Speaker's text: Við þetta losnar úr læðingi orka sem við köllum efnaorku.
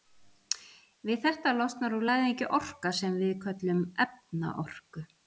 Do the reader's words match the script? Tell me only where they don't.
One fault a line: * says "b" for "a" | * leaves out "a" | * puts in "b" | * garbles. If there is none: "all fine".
all fine